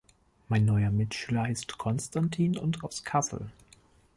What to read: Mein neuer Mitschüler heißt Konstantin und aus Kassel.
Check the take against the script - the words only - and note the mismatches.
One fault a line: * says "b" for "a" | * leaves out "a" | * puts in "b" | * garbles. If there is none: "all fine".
all fine